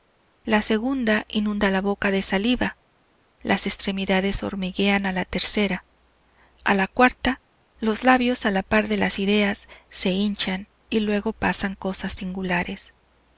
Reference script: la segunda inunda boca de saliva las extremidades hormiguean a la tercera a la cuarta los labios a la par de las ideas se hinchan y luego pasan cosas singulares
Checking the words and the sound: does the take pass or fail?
fail